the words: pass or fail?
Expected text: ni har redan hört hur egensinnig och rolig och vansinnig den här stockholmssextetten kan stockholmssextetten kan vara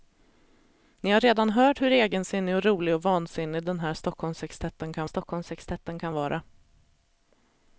pass